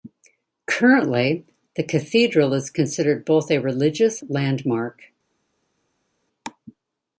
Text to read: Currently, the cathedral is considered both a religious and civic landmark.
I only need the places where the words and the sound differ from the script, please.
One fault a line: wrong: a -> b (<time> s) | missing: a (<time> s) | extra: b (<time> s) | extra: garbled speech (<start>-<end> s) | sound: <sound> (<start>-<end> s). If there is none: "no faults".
missing: and civic (4.2 s)